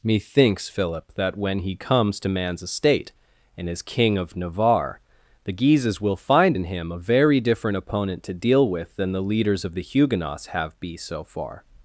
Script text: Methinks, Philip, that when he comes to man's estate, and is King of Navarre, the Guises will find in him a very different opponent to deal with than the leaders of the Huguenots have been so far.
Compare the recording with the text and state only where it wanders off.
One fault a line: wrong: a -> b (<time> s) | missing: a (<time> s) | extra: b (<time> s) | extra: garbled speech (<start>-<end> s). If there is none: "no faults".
wrong: been -> be (10.8 s)